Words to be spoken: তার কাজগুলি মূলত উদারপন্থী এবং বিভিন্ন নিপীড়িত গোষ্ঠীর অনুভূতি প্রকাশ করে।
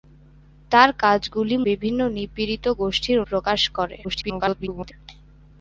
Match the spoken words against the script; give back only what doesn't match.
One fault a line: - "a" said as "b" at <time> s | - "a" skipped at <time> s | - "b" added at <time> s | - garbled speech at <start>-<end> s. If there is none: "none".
- "মূলত উদারপন্থী এবং" skipped at 1.6 s
- "অনুভূতি" skipped at 3.2 s
- garbled speech at 4.0-4.9 s